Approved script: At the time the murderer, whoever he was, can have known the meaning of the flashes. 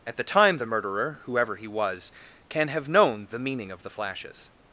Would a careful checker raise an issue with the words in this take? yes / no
no